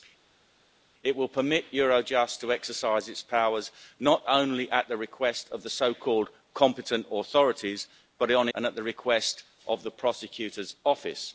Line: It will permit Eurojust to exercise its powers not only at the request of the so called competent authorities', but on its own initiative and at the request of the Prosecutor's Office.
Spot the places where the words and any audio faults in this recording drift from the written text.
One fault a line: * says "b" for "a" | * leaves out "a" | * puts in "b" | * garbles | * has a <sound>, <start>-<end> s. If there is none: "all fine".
* leaves out "its own initiative"